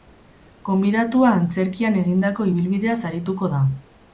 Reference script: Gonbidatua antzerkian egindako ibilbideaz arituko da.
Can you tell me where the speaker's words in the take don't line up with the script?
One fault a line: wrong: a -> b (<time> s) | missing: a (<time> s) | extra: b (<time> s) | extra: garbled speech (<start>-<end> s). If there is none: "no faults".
no faults